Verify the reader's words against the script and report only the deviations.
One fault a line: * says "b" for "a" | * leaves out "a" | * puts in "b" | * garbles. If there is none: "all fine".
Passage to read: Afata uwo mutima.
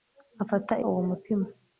all fine